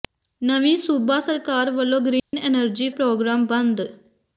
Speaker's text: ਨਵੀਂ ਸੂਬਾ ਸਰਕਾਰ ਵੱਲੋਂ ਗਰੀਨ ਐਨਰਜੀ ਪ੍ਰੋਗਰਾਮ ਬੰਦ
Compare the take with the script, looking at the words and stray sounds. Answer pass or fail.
fail